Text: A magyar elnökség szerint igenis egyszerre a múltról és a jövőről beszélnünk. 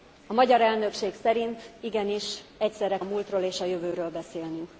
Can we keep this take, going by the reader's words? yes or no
yes